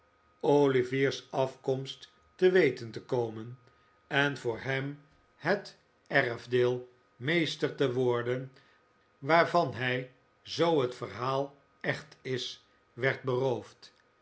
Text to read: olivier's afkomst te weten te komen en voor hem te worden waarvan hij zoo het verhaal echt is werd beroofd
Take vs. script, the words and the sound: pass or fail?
fail